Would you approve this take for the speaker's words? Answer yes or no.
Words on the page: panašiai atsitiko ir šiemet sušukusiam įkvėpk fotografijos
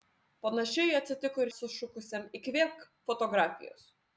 no